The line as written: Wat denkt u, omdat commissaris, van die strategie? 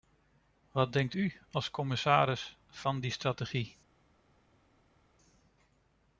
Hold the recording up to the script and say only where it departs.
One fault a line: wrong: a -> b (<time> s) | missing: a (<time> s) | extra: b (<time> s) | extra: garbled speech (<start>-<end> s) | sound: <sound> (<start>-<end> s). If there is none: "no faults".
wrong: omdat -> als (1.5 s)